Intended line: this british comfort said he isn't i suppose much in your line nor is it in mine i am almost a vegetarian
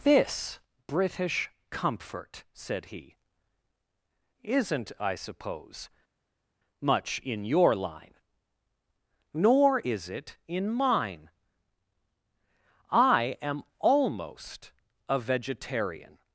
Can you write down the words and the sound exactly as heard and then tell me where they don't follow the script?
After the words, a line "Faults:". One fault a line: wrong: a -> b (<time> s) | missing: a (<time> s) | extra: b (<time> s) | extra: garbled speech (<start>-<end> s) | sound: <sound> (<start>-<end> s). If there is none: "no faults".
this british comfort said he isn't i suppose much in your line nor is it in mine i am almost a vegetarian
Faults:
no faults